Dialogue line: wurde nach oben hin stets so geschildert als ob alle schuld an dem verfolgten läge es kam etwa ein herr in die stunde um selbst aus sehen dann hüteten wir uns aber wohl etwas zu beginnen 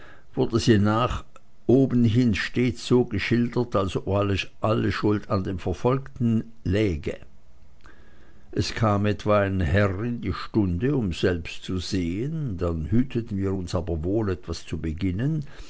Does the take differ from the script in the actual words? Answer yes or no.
yes